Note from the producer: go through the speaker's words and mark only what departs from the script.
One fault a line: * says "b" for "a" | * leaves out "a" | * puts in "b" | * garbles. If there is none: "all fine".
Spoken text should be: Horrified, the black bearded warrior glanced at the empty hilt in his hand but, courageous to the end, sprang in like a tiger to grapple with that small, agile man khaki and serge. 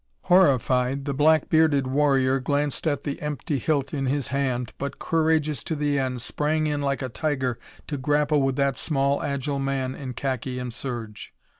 * puts in "in"